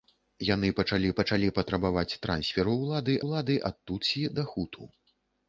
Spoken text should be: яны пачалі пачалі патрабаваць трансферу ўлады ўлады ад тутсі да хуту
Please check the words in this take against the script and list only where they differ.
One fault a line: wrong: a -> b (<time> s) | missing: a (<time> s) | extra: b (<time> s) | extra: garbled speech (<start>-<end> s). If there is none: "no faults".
no faults